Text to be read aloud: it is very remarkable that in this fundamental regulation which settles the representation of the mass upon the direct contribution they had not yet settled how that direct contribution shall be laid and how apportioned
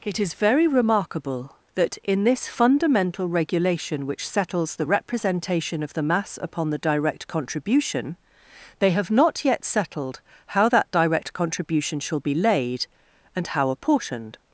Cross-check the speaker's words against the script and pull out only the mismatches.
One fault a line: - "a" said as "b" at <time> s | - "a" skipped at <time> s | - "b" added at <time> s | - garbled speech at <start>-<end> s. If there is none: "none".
- "had" said as "have" at 8.9 s